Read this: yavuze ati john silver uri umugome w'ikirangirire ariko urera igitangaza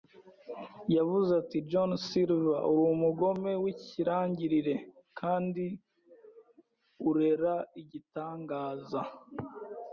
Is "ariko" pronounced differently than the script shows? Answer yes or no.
yes